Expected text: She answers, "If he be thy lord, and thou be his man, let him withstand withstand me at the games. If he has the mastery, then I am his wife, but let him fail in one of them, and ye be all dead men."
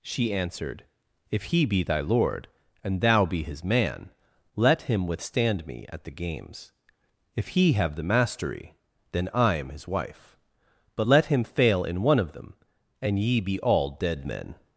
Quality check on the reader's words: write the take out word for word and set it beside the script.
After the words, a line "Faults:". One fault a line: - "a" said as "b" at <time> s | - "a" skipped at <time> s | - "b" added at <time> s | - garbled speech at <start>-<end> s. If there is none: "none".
She answered, "If he be thy lord, and thou be his man, let him withstand me at the games. If he have the mastery, then I am his wife, but let him fail in one of them, and ye be all dead men."
Faults:
- "answers" said as "answered" at 0.3 s
- "withstand" skipped at 5.7 s
- "has" said as "have" at 7.7 s